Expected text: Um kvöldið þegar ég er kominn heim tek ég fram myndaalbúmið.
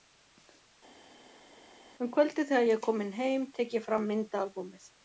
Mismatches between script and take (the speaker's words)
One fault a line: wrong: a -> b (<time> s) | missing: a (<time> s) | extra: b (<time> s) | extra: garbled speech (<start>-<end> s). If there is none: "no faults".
no faults